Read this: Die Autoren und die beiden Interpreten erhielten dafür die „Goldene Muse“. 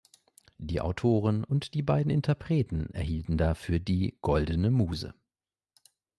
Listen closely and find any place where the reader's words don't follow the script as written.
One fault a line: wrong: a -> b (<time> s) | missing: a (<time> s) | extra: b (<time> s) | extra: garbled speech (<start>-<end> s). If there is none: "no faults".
no faults